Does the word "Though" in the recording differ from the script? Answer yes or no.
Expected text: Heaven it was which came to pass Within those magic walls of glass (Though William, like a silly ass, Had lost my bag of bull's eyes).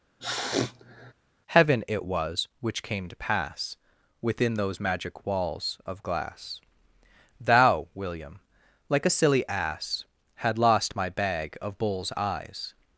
yes